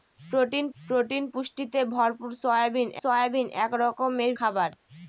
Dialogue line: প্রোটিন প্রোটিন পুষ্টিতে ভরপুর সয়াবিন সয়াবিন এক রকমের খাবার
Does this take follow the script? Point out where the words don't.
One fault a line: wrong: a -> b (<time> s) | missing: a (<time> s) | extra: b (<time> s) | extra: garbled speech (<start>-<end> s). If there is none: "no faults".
no faults